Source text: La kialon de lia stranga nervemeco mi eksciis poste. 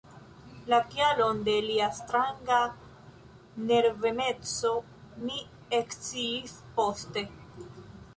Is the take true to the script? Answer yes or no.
yes